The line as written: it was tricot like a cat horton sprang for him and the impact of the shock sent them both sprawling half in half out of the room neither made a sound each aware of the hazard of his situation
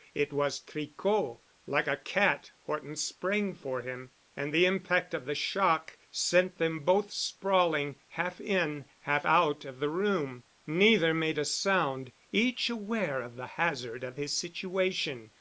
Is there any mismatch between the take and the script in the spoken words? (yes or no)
no